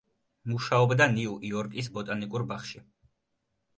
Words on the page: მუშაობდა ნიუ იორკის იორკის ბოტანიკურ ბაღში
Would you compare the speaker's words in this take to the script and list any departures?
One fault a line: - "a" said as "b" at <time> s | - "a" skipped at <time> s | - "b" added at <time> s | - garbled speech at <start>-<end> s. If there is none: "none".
- "იორკის" skipped at 1.9 s